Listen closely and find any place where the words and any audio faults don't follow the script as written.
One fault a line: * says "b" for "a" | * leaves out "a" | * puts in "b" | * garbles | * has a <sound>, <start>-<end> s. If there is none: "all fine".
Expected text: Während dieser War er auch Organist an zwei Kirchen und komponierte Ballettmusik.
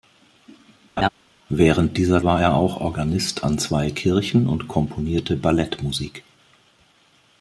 * has a laugh, 1.0-1.1 s